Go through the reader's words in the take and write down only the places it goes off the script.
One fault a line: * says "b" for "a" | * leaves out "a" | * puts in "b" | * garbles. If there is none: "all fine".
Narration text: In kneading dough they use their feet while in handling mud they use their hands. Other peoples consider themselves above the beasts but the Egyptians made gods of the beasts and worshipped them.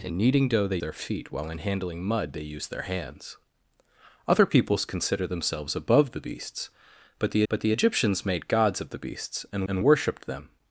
* leaves out "use"
* puts in "but the"
* puts in "and"